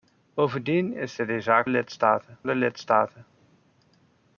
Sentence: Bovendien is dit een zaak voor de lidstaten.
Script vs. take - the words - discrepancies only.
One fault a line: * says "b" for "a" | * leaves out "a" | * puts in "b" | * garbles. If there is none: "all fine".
* says "lidstaten" for "voor"